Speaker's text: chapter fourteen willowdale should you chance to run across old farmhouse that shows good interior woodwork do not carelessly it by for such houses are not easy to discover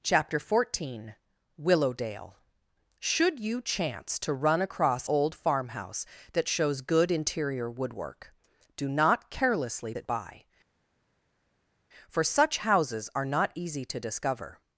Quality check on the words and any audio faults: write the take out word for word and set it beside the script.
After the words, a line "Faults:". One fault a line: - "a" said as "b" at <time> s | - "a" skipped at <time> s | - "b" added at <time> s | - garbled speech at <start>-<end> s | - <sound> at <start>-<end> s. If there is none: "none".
chapter fourteen willowdale should you chance to run across old farmhouse that shows good interior woodwork do not carelessly it by for such houses are not easy to discover
Faults:
none